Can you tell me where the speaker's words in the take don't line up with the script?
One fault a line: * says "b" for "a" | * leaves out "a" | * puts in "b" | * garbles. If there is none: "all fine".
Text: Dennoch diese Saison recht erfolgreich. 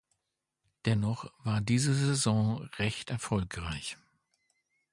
* puts in "war"